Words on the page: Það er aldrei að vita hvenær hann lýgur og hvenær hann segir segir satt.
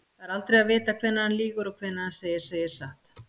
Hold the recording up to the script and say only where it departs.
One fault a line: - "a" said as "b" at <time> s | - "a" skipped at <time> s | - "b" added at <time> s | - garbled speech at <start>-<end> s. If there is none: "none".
none